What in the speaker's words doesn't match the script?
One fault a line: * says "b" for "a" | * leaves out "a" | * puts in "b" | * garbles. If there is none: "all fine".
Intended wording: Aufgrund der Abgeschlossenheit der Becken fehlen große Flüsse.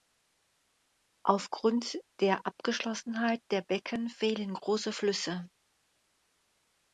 all fine